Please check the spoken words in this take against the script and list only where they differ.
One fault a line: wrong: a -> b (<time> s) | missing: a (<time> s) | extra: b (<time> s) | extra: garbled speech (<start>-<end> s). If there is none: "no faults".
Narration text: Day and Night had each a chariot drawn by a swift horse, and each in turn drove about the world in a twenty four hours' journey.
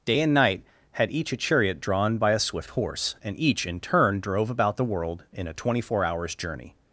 no faults